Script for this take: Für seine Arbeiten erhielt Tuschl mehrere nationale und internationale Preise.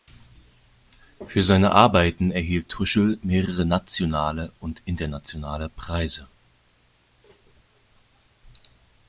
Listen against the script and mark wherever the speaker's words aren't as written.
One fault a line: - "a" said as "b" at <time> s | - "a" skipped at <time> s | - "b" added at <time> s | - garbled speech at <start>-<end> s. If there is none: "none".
none